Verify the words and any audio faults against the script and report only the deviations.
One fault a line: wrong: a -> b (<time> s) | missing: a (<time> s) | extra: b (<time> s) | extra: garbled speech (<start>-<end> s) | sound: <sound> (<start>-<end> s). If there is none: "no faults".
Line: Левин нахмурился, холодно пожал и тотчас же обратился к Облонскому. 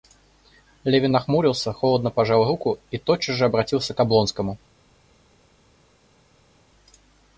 extra: руку (2.5 s)